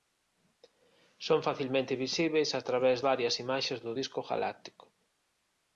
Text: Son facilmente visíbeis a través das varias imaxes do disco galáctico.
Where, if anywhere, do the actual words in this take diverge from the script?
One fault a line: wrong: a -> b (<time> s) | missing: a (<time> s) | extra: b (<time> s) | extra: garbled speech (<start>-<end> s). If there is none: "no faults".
missing: das (3.0 s)